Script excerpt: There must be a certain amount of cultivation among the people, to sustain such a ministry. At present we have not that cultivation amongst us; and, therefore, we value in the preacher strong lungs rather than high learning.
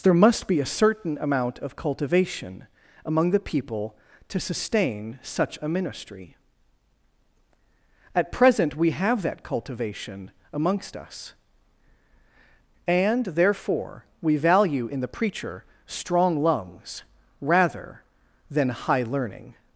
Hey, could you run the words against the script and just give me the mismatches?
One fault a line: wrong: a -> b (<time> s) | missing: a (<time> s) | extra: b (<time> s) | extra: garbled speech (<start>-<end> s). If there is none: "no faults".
missing: not (9.2 s)